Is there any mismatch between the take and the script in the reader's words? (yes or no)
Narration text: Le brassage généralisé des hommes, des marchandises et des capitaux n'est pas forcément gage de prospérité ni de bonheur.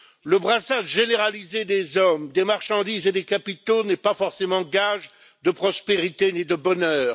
no